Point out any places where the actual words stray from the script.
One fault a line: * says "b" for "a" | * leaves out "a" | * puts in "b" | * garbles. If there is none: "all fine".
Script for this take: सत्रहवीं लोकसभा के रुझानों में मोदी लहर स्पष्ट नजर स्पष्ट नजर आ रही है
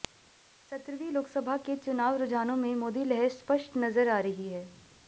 * puts in "चुनाव"
* leaves out "स्पष्ट नजर"